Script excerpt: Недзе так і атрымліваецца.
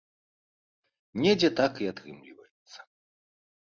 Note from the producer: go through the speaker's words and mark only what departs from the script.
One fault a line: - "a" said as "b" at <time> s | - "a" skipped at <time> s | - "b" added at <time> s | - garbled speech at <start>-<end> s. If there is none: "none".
none